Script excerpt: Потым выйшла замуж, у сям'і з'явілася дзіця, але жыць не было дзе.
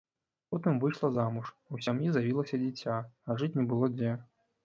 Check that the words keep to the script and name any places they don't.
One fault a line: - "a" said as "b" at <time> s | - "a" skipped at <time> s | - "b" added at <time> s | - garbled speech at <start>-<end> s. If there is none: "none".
- "але" said as "а" at 3.3 s